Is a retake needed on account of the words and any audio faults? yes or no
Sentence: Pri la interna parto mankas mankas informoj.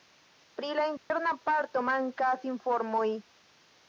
yes